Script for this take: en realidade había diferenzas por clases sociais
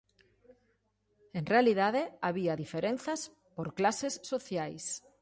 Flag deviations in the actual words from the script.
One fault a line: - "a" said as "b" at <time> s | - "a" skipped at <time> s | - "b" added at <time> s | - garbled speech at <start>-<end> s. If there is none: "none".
none